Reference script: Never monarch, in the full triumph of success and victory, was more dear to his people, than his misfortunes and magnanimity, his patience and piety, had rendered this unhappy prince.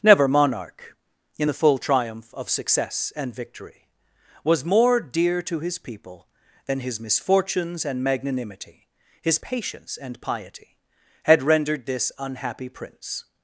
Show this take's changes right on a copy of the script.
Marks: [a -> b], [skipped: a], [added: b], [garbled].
Never monarch, in the full triumph of success and victory, was more dear to his people, than his misfortunes and magnanimity, his patience and piety, had rendered this unhappy prince.